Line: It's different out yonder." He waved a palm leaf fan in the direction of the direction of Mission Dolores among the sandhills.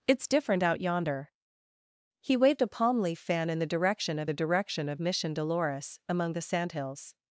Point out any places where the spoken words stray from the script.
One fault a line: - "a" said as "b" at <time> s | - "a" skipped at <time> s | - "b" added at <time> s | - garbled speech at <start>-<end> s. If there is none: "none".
none